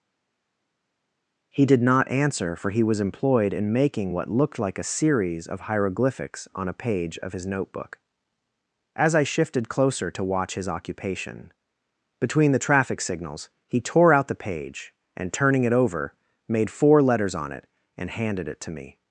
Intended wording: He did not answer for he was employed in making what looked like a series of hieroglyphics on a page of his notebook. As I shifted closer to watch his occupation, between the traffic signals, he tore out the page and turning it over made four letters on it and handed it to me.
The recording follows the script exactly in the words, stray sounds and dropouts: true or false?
true